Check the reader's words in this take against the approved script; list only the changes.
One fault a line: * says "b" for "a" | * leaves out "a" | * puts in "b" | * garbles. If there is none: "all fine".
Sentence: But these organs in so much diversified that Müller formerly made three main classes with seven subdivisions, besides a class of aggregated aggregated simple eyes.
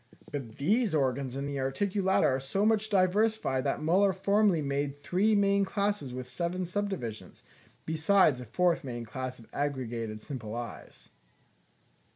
* puts in "the Articulata are"
* puts in "fourth main"
* leaves out "aggregated"